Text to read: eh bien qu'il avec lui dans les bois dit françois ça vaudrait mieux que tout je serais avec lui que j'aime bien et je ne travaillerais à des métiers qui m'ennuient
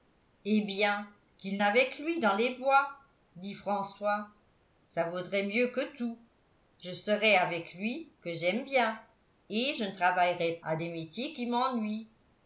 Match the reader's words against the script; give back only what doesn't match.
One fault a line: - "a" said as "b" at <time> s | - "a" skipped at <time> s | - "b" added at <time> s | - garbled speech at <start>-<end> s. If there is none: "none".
none